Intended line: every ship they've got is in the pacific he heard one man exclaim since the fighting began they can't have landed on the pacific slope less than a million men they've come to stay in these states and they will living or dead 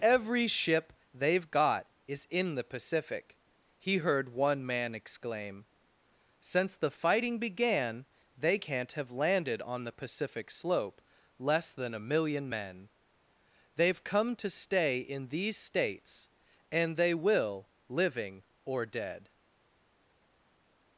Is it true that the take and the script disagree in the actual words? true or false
false